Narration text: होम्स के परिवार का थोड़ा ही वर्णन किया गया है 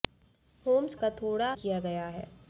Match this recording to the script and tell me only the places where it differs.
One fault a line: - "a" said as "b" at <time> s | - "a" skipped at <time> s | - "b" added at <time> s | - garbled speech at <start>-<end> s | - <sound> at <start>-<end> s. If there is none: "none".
- "के परिवार" skipped at 0.9 s
- "ही वर्णन" skipped at 1.5 s